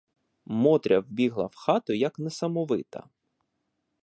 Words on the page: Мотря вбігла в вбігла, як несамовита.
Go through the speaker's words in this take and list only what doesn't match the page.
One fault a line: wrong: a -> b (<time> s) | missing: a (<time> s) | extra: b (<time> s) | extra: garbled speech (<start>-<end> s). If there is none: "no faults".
wrong: вбігла -> хату (1.6 s)